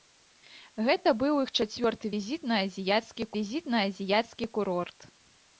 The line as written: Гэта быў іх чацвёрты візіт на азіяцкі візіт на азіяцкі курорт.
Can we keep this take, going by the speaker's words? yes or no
yes